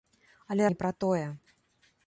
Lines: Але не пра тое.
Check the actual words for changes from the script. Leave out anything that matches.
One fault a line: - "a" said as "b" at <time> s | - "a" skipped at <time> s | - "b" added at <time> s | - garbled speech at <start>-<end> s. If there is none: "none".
none